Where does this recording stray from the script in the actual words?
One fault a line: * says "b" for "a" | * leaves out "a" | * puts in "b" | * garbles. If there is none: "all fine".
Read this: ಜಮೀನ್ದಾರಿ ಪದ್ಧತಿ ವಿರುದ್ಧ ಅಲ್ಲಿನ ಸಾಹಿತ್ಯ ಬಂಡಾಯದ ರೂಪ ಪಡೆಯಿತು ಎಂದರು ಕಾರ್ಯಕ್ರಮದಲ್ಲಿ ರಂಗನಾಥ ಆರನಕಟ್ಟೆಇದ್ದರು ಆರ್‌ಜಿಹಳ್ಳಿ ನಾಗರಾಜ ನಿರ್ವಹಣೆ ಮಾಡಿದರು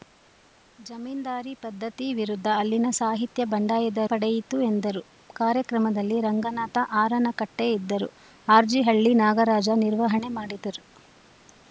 * leaves out "ರೂಪ"